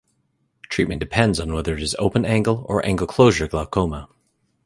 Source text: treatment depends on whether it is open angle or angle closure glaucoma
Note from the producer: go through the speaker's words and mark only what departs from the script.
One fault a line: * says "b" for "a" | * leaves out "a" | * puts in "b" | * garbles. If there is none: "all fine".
all fine